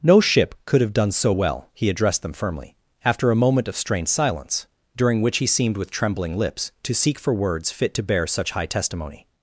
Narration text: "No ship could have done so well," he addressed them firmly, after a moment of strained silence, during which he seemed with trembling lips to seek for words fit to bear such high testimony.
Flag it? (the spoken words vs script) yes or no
no